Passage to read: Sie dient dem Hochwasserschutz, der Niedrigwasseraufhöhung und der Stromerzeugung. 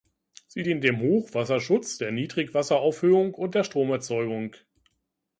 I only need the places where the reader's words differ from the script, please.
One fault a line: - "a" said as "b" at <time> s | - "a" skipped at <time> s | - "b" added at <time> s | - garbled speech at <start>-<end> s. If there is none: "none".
none